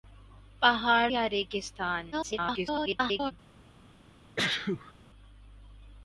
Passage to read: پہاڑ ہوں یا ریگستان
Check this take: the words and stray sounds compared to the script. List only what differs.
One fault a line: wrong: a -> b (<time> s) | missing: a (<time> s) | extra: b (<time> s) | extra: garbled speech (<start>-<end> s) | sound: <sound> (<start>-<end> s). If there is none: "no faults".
missing: ہوں (1.1 s)
extra: garbled speech (2.1-3.3 s)
sound: sneeze (4.4-4.9 s)